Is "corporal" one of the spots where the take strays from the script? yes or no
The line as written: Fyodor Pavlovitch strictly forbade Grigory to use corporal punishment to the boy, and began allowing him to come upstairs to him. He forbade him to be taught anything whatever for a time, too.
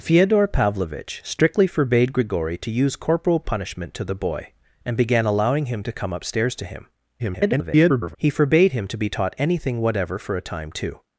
no